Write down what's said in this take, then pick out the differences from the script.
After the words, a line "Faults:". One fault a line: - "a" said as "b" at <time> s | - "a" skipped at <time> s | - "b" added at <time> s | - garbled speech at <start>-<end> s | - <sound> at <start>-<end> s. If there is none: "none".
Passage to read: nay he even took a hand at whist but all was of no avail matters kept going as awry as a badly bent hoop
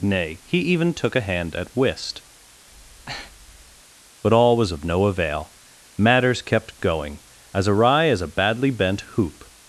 nay he even took a hand at whist but all was of no avail matters kept going as awry as a badly bent hoop
Faults:
- breath at 2.7-3.8 s